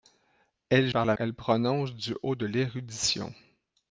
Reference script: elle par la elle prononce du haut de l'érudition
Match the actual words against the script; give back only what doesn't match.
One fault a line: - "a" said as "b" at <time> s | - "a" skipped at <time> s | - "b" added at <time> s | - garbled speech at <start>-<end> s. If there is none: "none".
none